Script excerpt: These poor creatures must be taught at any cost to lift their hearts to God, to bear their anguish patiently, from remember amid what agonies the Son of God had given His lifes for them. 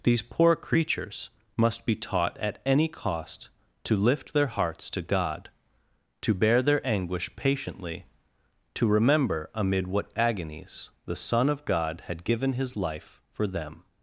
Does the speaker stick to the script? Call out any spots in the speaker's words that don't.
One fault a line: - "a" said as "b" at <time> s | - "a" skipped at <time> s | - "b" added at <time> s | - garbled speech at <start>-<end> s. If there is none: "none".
- "from" said as "to" at 8.7 s
- "lifes" said as "life" at 12.8 s